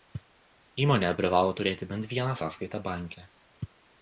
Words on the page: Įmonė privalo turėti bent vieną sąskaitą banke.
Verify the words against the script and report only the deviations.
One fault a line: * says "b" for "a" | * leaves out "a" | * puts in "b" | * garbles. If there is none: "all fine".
all fine